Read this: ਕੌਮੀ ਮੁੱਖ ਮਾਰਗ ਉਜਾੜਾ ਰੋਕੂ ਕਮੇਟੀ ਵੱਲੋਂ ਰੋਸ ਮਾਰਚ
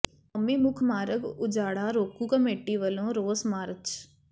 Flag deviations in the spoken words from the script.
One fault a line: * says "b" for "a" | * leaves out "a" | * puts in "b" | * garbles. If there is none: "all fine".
all fine